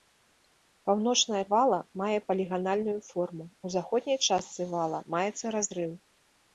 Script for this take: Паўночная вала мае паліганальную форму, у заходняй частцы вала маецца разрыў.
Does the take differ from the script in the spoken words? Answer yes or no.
no